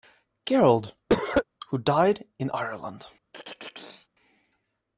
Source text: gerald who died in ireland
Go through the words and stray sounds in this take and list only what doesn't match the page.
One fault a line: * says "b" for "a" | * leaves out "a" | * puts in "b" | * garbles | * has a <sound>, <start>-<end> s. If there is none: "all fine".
* has a cough, 1.1-1.4 s
* has a throat clearing, 3.3-4.1 s